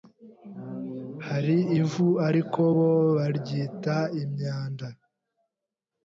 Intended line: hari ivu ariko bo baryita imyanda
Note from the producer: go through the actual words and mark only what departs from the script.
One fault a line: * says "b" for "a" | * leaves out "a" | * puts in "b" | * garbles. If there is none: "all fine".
all fine